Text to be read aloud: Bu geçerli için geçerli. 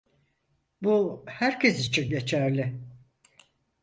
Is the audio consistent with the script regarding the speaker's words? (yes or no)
no